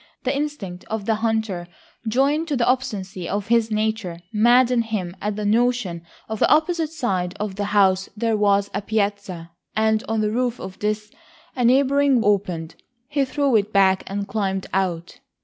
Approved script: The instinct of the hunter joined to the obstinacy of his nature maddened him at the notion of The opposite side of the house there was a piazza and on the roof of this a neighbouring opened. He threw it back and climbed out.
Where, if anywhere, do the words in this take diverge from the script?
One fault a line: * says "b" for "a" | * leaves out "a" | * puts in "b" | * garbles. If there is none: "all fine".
all fine